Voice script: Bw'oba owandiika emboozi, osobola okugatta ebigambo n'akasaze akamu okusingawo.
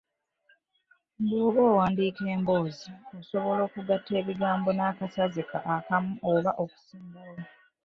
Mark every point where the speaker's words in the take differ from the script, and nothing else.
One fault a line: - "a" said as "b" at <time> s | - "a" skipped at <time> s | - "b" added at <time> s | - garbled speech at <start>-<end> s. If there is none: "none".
- "oba" added at 6.3 s